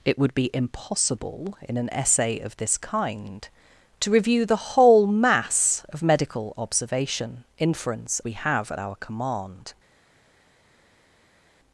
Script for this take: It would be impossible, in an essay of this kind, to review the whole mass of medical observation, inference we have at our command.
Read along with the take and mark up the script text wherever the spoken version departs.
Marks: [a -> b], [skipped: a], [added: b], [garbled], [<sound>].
It would be impossible, in an essay of this kind, to review the whole mass of medical observation, inference we have at our command.